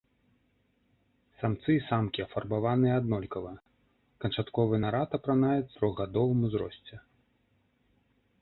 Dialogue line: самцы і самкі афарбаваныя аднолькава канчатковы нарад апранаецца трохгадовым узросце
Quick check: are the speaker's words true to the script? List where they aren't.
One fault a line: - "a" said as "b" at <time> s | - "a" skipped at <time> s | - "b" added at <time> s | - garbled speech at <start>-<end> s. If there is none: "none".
none